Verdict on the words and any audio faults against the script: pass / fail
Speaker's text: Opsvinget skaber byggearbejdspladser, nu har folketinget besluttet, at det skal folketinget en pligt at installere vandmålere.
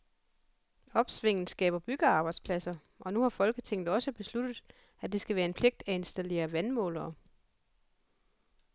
fail